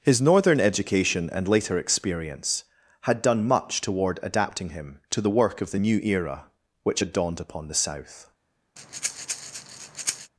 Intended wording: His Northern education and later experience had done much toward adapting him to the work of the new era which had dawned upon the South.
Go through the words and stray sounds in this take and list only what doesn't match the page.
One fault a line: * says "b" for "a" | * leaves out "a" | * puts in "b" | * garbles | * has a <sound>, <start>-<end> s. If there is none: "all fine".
* has a breath, 8.8-10.3 s